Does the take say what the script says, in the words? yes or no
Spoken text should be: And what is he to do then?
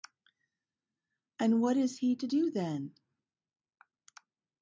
yes